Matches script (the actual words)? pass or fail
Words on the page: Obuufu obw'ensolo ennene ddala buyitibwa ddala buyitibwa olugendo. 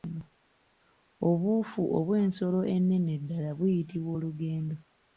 fail